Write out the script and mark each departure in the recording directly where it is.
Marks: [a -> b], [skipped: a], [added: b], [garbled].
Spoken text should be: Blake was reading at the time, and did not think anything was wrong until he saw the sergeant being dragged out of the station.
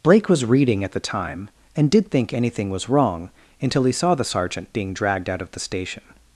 Blake was reading at the time, and did [skipped: not] think anything was wrong until he saw the sergeant being dragged out of the station.